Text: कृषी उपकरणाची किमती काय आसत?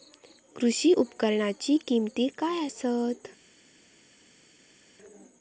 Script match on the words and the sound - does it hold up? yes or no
yes